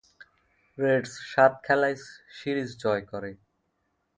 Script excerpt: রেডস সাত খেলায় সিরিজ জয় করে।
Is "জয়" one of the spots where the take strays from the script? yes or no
no